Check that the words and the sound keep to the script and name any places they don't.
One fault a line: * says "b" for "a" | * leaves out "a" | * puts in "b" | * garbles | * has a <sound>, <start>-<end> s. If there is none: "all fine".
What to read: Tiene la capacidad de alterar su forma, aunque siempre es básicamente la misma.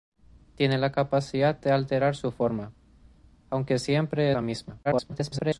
* leaves out "es básicamente"
* garbles